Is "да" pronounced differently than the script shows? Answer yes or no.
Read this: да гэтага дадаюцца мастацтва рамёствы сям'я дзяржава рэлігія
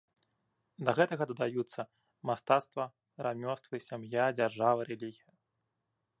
no